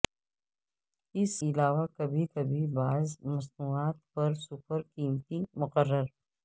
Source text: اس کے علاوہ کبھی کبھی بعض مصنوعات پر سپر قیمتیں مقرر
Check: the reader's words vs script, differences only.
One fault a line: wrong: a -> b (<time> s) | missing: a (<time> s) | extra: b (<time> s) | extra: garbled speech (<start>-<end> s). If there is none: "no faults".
missing: کے (1.3 s)